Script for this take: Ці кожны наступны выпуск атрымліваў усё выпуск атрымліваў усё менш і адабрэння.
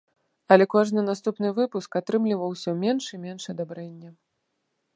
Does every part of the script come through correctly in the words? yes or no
no